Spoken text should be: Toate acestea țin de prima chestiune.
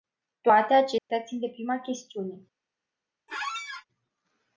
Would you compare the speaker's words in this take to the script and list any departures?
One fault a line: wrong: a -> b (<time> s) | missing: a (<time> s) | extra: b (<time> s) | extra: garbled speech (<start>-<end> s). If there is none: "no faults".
no faults